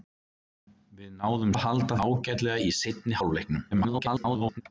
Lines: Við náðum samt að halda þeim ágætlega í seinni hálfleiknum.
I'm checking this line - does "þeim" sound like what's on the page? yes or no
no